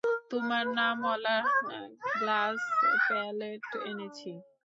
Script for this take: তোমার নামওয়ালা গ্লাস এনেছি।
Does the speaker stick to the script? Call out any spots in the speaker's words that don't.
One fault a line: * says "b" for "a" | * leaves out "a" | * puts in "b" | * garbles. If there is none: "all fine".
* puts in "প্যালেট"